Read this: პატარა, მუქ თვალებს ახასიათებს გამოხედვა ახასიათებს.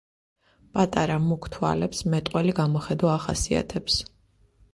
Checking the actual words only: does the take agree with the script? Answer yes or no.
no